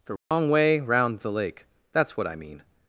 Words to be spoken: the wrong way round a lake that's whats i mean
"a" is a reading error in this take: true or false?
true